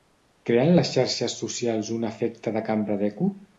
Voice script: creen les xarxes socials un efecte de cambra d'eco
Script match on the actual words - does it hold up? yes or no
yes